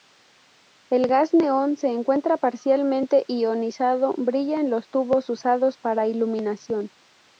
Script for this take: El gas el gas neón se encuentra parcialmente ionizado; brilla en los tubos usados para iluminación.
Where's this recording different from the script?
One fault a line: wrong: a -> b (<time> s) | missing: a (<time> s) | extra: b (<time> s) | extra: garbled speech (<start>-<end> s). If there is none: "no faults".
missing: el gas (1.4 s)